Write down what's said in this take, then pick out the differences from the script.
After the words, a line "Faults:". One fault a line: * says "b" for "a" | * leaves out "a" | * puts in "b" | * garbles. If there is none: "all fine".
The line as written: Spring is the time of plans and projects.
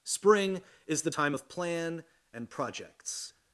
Spring is the time of plan and projects.
Faults:
* says "plan" for "plans"